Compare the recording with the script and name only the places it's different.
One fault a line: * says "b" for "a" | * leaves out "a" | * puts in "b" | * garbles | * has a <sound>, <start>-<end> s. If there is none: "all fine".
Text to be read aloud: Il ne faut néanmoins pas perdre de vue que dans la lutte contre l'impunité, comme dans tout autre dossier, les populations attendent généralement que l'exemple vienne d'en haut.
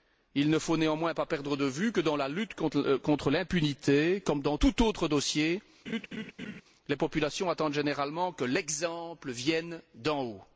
* has a laugh, 5.9-6.6 s